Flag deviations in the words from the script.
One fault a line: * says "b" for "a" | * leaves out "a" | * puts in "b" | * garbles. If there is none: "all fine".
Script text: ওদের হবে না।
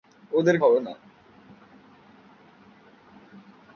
all fine